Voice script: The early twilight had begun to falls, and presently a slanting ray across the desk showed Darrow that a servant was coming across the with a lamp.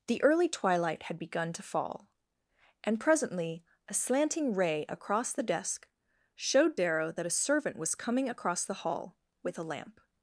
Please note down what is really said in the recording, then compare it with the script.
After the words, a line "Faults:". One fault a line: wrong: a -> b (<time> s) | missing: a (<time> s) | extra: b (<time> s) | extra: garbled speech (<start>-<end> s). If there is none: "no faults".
The early twilight had begun to fall, and presently a slanting ray across the desk showed Darrow that a servant was coming across the hall with a lamp.
Faults:
wrong: falls -> fall (1.6 s)
extra: hall (8.8 s)